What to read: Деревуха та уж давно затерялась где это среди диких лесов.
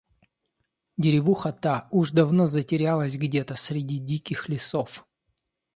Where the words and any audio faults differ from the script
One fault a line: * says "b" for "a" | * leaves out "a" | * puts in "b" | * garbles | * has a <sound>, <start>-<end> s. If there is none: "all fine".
* says "то" for "это"